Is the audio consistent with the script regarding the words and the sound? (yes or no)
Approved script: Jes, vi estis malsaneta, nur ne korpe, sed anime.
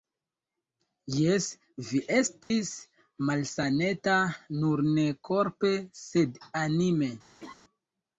no